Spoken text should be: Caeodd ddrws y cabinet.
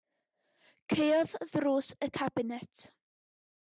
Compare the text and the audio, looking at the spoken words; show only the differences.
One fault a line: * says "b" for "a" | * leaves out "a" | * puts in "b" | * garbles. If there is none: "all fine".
all fine